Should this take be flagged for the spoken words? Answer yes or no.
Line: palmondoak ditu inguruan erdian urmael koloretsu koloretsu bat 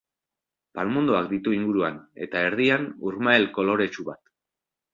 yes